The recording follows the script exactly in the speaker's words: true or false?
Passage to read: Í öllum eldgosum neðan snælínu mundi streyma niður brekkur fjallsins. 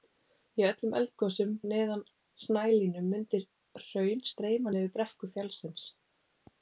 false